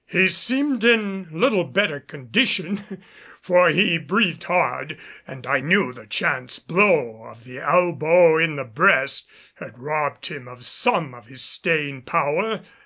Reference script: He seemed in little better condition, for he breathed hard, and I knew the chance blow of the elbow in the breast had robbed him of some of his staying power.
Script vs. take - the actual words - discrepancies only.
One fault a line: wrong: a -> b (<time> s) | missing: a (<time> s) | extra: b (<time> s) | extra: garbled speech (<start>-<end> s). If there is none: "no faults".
no faults